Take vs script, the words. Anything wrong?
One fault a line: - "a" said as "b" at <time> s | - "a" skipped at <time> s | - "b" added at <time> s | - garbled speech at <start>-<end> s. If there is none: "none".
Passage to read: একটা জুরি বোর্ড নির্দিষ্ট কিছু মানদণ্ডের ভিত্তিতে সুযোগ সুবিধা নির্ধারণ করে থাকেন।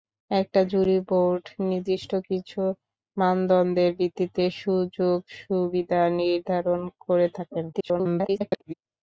- garbled speech at 7.7-8.7 s